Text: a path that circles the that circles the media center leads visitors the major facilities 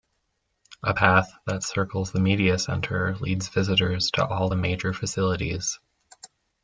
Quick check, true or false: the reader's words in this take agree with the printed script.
false